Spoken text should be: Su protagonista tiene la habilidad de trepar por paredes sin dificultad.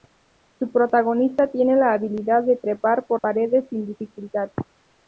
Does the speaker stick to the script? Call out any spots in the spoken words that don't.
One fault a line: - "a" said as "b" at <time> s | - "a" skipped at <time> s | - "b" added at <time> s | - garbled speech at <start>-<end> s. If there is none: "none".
none